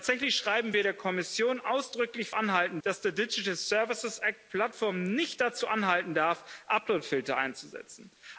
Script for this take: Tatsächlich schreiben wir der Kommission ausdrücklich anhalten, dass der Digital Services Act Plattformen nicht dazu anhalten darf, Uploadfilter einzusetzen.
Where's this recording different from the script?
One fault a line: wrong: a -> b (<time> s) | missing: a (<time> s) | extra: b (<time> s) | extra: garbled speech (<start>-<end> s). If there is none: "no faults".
no faults